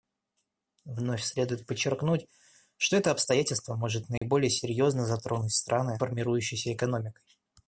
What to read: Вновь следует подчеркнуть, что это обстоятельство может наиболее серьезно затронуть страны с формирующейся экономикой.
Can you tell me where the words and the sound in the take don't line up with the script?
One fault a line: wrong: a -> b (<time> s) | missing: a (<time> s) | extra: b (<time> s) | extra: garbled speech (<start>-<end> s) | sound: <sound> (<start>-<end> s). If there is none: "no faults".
sound: dropout (4.2-4.2 s)
missing: с (6.0 s)